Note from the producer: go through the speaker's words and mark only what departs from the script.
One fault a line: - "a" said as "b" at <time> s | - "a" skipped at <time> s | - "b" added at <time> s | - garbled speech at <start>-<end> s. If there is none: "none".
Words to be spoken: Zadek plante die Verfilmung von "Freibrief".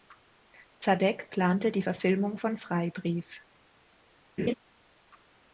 none